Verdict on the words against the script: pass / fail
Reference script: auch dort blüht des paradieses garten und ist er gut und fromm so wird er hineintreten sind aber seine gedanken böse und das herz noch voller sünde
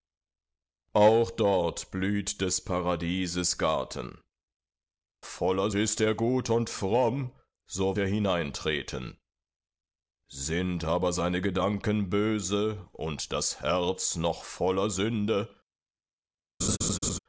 fail